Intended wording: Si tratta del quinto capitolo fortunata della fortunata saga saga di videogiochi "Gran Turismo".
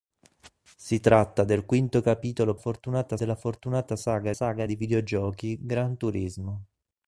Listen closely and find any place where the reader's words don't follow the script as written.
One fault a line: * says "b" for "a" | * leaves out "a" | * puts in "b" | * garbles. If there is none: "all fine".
all fine